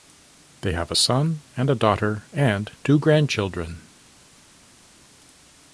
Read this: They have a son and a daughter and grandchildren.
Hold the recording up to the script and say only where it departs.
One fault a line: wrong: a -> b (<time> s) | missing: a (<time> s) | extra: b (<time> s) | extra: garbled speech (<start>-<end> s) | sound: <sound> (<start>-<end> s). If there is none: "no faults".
extra: two (2.8 s)